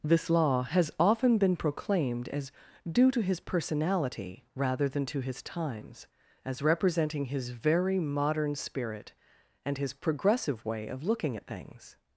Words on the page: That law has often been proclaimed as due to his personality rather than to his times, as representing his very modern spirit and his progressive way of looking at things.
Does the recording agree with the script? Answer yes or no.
no